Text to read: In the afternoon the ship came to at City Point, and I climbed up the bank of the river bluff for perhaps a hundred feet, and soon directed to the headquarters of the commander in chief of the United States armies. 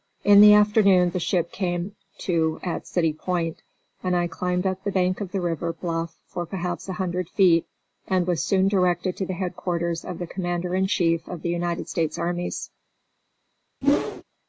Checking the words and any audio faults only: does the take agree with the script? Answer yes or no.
no